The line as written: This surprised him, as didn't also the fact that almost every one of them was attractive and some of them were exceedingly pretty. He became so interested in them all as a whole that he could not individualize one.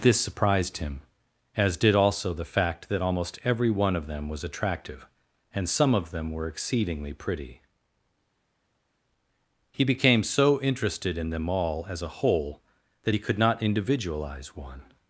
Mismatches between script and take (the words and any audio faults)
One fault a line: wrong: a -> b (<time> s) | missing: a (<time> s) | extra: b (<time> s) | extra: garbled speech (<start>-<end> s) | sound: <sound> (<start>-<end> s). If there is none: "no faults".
wrong: didn't -> did (1.8 s)